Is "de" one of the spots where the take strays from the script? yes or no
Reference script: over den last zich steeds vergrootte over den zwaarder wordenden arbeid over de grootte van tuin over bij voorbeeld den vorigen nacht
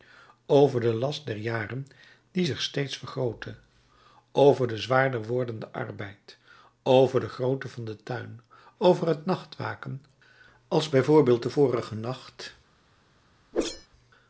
no